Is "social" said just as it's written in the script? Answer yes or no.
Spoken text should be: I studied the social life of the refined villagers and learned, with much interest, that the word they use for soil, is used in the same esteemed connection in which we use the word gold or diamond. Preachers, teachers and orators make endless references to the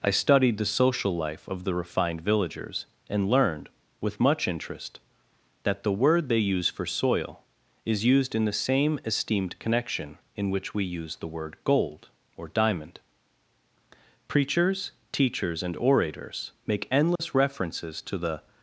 yes